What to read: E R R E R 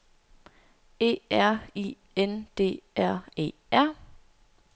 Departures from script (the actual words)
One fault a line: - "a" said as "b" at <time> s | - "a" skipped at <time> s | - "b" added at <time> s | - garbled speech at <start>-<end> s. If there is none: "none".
- "I N D" added at 1.8 s